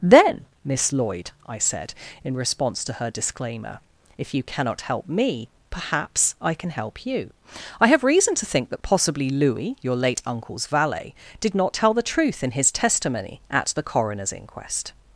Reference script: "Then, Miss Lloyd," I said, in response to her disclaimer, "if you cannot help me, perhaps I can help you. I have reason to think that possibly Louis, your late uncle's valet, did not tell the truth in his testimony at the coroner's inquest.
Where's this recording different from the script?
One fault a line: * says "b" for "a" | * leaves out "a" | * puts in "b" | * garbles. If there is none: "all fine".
all fine